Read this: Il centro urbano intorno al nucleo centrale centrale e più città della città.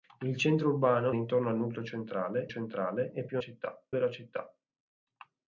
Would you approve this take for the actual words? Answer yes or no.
yes